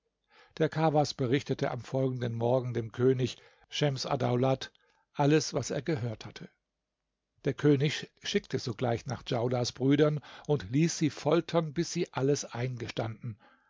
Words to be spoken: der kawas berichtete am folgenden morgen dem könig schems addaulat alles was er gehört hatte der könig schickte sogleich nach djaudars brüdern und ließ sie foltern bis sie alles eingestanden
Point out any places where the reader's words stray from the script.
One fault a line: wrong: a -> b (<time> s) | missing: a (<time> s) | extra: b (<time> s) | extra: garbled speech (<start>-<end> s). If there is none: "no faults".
no faults